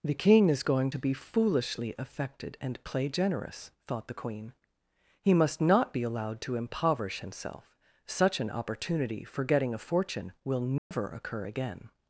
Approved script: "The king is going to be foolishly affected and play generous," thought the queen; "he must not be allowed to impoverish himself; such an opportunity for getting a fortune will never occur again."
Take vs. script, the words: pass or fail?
pass